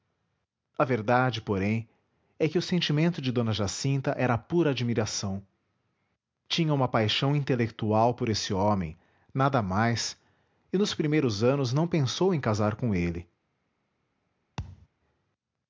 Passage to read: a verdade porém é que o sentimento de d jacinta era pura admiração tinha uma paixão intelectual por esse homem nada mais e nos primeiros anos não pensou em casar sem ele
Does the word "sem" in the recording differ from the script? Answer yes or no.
yes